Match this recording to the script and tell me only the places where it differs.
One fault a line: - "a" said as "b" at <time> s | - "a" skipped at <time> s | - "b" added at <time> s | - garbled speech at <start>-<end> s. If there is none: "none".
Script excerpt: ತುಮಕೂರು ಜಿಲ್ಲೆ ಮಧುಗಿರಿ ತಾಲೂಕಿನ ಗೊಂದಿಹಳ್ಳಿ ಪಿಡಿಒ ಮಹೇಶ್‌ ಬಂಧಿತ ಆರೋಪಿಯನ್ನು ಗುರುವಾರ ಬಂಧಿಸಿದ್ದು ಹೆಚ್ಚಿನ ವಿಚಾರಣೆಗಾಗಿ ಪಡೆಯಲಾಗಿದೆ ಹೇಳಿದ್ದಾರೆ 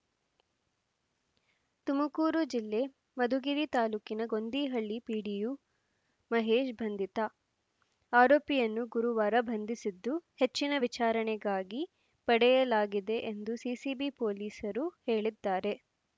- "ಎಂದು ಸಿಸಿಬಿ ಪೊಲೀಸರು" added at 13.3 s